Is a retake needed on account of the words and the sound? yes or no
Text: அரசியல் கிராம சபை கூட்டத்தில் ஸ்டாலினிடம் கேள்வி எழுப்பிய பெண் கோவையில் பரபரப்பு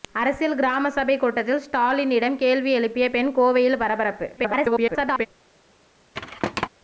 yes